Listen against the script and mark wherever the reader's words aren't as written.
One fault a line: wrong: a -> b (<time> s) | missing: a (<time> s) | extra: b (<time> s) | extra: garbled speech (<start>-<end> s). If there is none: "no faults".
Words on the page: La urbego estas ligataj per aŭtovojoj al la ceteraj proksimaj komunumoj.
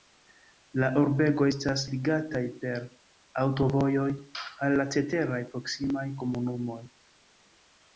no faults